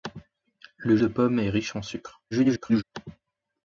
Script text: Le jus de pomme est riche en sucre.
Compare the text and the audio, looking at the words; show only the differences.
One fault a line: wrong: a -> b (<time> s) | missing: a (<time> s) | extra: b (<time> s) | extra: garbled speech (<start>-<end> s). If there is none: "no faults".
missing: jus (1.0 s)
extra: garbled speech (2.3-2.8 s)